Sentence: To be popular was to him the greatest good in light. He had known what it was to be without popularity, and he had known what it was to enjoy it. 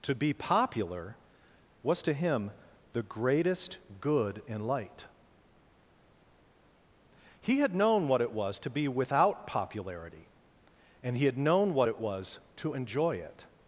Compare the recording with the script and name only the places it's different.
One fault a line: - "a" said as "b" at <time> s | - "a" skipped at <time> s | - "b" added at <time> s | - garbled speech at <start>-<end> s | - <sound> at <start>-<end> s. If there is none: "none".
none